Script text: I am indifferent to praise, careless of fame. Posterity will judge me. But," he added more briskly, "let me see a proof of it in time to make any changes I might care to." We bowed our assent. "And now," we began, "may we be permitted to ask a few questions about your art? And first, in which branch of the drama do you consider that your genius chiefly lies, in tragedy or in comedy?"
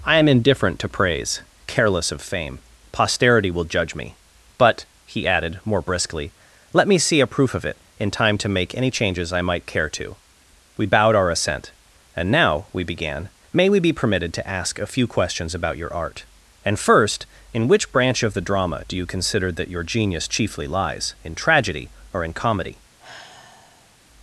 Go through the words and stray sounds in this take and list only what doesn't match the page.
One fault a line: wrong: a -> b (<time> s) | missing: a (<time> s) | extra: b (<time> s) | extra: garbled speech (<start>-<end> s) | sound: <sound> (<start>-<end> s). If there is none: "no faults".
sound: sigh (23.0-24.0 s)